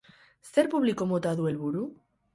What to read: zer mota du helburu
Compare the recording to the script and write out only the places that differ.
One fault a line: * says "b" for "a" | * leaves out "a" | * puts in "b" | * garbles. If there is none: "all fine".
* puts in "publiko"